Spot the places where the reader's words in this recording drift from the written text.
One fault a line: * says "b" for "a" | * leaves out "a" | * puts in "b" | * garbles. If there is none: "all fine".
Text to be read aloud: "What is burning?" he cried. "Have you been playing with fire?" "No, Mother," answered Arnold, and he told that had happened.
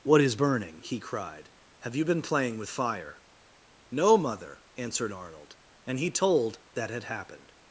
all fine